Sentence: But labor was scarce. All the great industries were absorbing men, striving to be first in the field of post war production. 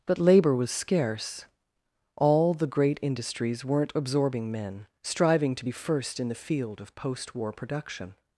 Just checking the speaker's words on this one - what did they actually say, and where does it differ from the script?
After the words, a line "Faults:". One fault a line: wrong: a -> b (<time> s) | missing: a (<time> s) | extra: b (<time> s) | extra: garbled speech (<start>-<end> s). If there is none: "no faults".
But labor was scarce. All the great industries weren't absorbing men, striving to be first in the field of post war production.
Faults:
wrong: were -> weren't (3.6 s)